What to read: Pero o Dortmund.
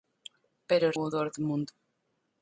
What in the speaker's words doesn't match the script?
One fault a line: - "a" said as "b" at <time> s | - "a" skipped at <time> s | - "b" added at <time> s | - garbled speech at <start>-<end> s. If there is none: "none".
none